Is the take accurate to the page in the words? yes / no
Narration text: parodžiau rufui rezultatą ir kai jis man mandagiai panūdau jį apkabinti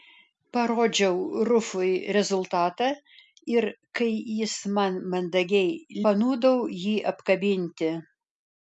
yes